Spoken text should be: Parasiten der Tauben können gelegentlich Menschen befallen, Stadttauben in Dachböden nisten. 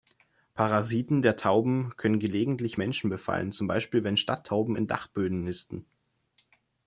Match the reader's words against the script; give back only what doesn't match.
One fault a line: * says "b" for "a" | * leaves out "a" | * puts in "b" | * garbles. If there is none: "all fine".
* puts in "zum Beispiel wenn"